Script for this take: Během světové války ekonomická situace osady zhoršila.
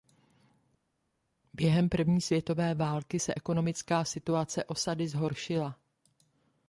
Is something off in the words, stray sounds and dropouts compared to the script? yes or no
yes